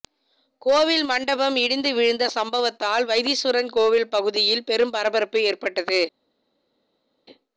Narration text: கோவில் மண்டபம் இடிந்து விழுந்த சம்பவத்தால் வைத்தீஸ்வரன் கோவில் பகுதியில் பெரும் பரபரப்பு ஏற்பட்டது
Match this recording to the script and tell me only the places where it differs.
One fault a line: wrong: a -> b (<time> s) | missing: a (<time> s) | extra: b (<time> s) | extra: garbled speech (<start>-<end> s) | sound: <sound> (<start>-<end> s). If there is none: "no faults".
no faults